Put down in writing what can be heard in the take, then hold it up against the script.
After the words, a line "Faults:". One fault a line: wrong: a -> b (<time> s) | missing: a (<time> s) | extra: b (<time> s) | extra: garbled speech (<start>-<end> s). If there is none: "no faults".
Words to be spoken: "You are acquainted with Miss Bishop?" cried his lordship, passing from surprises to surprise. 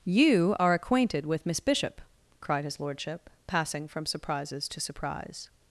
"You are acquainted with Miss Bishop?" cried his lordship, passing from surprises to surprise.
Faults:
no faults